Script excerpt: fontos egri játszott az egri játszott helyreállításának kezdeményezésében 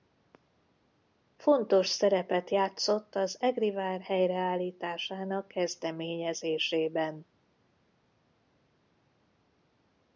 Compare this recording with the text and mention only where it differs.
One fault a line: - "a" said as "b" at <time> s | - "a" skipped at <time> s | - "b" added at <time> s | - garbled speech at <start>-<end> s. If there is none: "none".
- "egri" said as "szerepet" at 1.9 s
- "játszott" said as "vár" at 3.7 s